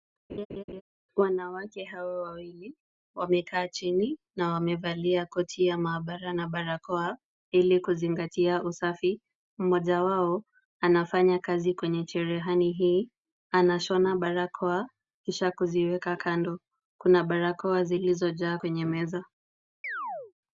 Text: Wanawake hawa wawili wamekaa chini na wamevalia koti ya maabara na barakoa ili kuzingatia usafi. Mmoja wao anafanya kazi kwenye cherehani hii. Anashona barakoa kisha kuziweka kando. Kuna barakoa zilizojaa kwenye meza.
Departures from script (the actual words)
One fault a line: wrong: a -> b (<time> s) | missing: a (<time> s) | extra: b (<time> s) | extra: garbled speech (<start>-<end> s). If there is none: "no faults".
no faults